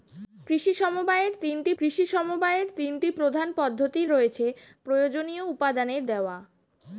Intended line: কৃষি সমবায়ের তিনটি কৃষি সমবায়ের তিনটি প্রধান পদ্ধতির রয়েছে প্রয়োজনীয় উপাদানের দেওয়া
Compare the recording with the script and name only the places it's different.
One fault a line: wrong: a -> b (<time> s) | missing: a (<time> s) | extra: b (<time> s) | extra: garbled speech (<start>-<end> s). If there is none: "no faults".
no faults